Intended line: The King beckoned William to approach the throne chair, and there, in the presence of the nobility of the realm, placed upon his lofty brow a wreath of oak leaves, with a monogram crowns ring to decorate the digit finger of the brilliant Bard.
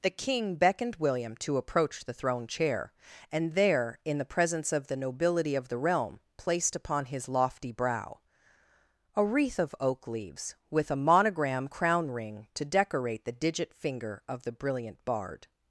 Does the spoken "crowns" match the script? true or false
false